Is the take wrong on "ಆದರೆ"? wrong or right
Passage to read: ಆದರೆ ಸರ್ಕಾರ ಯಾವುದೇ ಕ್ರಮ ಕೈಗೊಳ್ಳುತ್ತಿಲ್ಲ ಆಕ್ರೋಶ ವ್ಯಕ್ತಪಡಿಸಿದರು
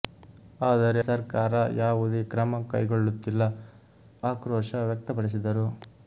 right